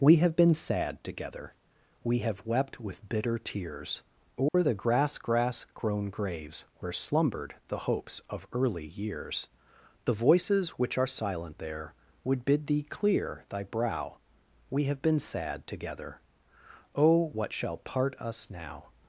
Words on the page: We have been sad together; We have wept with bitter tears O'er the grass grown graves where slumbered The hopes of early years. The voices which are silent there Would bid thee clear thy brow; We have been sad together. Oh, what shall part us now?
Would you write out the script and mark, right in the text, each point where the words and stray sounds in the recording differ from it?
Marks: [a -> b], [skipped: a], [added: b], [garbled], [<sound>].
We have been sad together; We have wept with bitter tears O'er [dropout] the grass [added: grass] grown graves where slumbered The hopes of early years. The voices which are silent there Would bid thee clear thy brow; We have been sad together. Oh, what shall part us now?